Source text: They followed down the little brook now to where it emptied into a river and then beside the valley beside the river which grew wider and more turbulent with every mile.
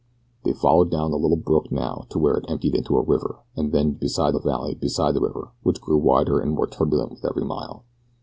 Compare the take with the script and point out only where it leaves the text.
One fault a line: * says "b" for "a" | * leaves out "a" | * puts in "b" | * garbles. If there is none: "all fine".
all fine